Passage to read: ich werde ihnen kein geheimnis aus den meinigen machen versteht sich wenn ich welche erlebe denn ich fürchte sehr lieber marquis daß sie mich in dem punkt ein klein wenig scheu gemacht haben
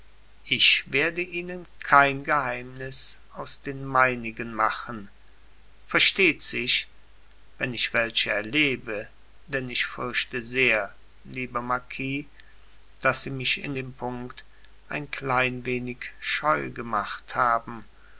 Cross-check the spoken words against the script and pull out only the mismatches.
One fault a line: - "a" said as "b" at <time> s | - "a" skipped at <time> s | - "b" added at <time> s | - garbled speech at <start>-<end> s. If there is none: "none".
none